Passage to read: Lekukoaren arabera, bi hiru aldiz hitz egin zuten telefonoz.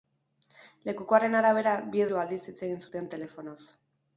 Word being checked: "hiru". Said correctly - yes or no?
yes